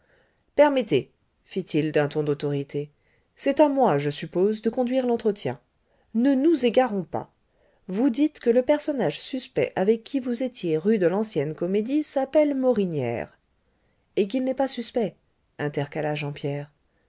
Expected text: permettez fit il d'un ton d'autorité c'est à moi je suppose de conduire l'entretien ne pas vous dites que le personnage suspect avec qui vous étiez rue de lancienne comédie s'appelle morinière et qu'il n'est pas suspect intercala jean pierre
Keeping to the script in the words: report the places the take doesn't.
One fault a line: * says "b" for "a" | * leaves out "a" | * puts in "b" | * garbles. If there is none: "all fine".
* puts in "nous égarons"